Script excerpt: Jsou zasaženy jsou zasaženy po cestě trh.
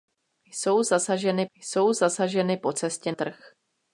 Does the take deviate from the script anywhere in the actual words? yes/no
no